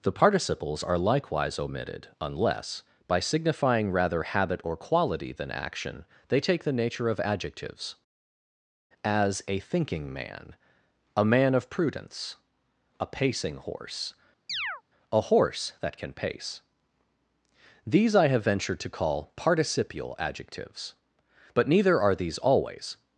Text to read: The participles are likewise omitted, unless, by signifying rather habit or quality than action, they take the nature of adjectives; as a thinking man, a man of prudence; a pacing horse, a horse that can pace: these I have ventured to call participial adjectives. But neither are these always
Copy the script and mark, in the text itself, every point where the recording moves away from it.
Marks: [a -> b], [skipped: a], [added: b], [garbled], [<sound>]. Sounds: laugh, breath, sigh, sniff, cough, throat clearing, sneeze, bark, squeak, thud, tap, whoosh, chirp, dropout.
The participles are likewise omitted, unless, by signifying rather habit or quality than action, they take the nature of adjectives; as a thinking man, a man of prudence; a pacing horse, [chirp] a horse that can pace: these I have ventured to call participial adjectives. But neither are these always